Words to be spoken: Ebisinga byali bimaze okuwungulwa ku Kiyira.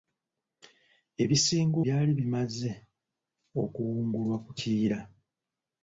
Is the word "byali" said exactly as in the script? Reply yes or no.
yes